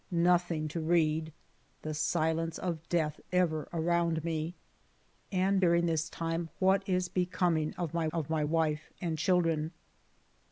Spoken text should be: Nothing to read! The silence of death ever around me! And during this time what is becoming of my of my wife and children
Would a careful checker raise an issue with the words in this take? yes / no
no